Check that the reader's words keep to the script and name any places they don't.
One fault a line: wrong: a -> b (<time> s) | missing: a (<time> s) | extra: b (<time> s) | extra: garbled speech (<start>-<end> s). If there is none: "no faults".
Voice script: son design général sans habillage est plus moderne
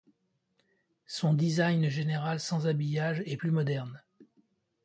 no faults